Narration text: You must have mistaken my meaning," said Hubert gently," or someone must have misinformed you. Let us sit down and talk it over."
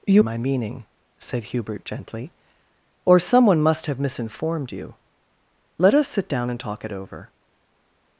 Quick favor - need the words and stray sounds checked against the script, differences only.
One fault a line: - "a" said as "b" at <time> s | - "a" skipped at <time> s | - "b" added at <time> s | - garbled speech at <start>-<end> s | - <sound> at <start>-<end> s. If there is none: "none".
- "must have mistaken" skipped at 0.2 s